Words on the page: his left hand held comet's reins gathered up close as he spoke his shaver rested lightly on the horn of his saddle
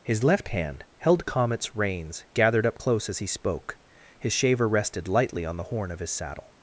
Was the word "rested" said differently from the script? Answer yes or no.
no